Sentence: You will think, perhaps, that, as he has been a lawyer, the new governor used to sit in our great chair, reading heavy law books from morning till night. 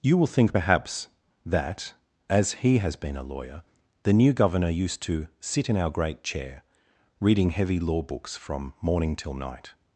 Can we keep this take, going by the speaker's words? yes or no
yes